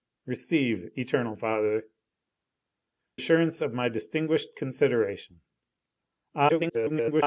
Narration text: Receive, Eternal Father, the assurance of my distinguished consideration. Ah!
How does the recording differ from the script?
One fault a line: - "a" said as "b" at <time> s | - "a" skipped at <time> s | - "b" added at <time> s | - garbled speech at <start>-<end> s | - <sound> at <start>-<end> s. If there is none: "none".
- "the" skipped at 1.8 s
- garbled speech at 6.5-7.2 s